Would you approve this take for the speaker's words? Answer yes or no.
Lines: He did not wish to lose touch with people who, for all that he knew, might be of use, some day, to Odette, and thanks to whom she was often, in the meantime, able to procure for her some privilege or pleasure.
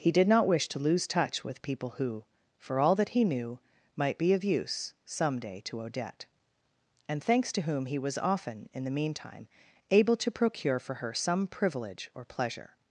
no